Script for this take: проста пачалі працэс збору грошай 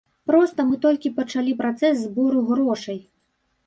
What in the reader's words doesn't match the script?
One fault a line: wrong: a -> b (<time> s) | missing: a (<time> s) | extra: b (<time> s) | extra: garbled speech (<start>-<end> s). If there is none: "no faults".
extra: мы толькі (0.7 s)